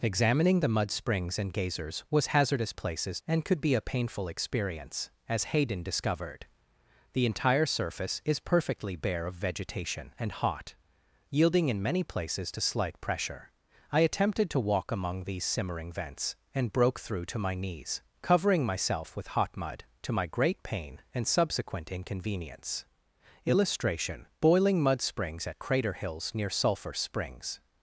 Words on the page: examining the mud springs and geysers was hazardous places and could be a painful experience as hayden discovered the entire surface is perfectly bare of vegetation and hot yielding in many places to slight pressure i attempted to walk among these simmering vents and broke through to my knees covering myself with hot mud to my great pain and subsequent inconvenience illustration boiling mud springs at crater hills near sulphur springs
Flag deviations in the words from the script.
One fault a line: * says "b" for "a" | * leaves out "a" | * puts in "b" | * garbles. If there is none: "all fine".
all fine